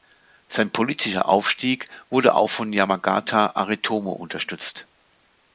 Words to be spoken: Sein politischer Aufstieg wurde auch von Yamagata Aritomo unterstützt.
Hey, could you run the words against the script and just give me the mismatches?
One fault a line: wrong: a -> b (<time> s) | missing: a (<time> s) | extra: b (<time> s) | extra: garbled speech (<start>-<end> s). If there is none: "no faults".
no faults